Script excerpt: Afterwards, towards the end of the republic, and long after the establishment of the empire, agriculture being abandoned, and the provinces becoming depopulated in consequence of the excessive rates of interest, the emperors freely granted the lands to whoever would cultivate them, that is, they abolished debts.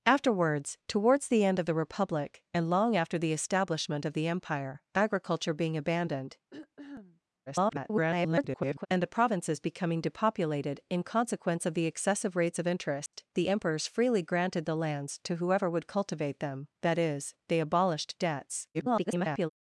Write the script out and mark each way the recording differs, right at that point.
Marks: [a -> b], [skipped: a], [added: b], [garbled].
Afterwards, towards the end of the republic, and long after the establishment of the empire, agriculture being abandoned, [garbled] and the provinces becoming depopulated in consequence of the excessive rates of interest, the emperors freely granted the lands to whoever would cultivate them, that is, they abolished debts. [garbled]